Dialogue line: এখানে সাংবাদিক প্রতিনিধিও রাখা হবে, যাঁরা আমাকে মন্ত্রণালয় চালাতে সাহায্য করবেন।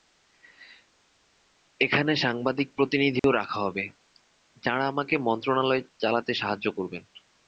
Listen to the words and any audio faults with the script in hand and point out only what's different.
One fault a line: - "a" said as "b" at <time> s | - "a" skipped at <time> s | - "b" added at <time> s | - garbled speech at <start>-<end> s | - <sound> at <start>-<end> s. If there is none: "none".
- dropout at 3.2-3.2 s